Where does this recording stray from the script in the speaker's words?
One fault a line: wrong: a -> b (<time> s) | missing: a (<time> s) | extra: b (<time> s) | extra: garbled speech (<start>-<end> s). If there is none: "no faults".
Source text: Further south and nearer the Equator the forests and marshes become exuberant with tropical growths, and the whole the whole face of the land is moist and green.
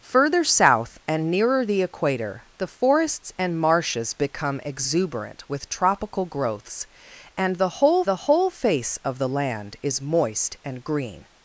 no faults